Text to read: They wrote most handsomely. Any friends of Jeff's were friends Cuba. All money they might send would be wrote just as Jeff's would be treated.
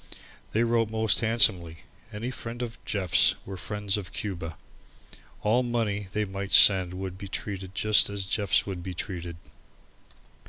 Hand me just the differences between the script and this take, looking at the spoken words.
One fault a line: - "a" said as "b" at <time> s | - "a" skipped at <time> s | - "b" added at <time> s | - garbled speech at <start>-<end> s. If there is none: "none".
- "of" added at 4.0 s
- "wrote" said as "treated" at 7.3 s